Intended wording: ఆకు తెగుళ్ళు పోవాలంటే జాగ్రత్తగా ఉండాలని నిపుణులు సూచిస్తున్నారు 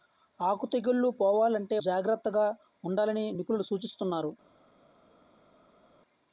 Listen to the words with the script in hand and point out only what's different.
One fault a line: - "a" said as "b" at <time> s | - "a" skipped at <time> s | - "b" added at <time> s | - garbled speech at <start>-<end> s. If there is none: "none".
none